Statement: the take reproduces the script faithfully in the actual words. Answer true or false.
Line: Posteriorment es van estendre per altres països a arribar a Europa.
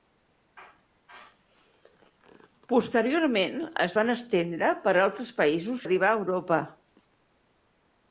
true